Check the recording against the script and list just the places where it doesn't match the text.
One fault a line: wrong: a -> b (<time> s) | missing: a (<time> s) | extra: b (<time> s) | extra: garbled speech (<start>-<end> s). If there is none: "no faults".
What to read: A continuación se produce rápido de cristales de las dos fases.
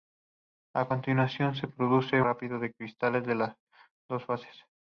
no faults